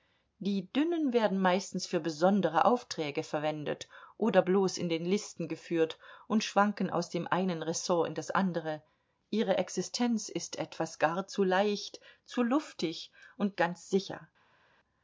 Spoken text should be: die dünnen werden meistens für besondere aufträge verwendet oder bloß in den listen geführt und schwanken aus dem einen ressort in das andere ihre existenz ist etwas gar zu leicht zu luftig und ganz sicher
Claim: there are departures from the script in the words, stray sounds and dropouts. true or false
false